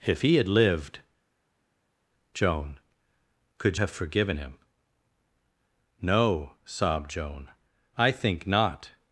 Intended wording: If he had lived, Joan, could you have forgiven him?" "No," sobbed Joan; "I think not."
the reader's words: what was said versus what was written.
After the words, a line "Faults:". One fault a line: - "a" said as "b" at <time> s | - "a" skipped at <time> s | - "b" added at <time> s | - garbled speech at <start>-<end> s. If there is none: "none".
If he had lived, Joan, could have forgiven him?" "No," sobbed Joan; "I think not."
Faults:
- "you" skipped at 3.8 s